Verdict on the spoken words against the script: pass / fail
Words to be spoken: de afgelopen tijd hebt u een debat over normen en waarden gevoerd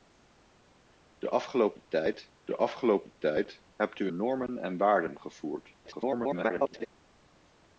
fail